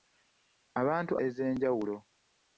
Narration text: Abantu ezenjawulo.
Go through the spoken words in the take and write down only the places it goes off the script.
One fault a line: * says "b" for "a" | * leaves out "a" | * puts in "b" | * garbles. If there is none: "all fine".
all fine